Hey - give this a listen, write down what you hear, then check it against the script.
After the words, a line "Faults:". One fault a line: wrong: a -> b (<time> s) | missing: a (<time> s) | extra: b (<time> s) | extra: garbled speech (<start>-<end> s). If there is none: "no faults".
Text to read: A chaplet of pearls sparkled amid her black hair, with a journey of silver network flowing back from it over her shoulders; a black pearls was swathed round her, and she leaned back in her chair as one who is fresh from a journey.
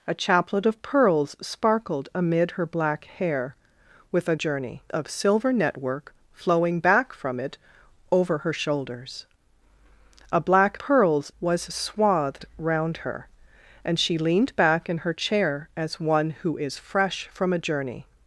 A chaplet of pearls sparkled amid her black hair, with a journey of silver network flowing back from it over her shoulders; a black pearls was swathed round her, and she leaned back in her chair as one who is fresh from a journey.
Faults:
no faults